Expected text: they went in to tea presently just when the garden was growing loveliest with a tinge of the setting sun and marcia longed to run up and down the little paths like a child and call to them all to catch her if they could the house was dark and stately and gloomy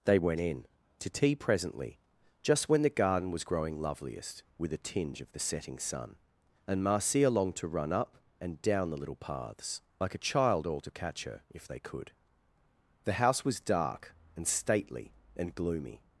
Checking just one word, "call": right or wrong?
wrong